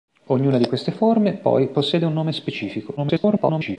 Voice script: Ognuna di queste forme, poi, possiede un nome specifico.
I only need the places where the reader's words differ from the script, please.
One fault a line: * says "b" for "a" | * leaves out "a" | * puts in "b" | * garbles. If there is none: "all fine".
* garbles